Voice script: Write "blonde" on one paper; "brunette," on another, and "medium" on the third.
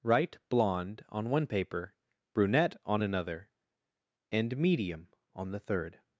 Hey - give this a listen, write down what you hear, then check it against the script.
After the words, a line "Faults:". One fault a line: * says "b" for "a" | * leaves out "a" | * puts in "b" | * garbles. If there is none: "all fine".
Write "blonde" on one paper; "brunette," on another, and "medium" on the third.
Faults:
all fine